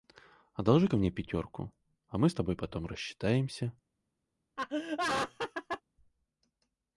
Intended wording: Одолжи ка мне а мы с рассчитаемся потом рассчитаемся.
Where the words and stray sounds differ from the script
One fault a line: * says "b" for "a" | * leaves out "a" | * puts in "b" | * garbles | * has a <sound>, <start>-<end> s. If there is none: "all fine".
* puts in "пятерку"
* says "тобой" for "рассчитаемся"
* has a laugh, 4.6-5.8 s